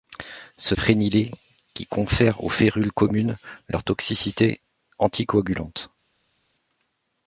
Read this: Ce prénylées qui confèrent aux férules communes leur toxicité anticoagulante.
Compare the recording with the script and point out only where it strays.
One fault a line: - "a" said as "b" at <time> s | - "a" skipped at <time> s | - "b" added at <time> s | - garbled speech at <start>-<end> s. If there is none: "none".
none